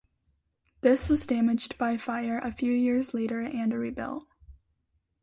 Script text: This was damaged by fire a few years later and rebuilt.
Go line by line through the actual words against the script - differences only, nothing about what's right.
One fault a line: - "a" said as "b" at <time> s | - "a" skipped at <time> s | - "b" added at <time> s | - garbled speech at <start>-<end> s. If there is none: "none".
none